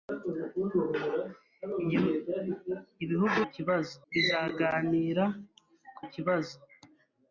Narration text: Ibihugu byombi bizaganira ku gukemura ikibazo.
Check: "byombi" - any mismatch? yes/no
yes